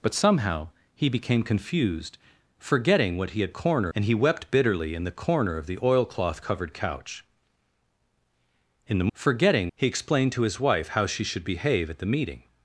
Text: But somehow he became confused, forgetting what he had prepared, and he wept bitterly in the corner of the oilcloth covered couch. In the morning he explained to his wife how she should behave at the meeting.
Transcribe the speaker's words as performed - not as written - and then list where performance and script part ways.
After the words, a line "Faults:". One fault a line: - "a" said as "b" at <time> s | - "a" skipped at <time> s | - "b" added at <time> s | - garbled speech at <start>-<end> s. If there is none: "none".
But somehow he became confused, forgetting what he had corner, and he wept bitterly in the corner of the oilcloth covered couch. In the forgetting he explained to his wife how she should behave at the meeting.
Faults:
- "prepared" said as "corner" at 3.5 s
- "morning" said as "forgetting" at 9.1 s